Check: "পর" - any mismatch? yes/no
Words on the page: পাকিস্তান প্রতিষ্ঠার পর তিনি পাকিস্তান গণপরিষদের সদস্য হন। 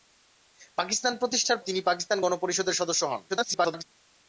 yes